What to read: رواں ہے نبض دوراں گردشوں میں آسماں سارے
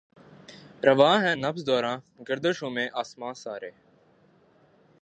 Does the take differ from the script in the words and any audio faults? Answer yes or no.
no